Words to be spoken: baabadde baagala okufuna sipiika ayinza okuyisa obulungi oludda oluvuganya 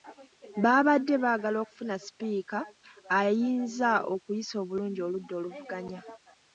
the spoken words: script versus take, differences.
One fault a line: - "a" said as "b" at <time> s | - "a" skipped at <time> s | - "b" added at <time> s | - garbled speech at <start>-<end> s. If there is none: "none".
none